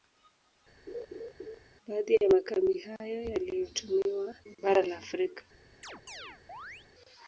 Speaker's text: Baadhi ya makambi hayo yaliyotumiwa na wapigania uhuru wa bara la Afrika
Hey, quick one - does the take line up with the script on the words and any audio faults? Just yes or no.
no